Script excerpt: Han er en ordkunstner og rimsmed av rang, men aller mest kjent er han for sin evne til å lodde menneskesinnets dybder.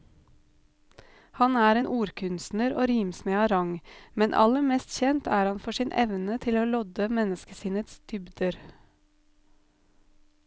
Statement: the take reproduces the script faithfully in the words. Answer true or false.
true